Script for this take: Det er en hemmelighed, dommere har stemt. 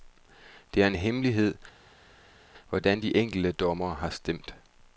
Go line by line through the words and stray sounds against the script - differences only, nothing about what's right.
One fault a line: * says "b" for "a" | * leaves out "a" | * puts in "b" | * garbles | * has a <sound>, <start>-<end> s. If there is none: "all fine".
* puts in "hvordan de enkelte"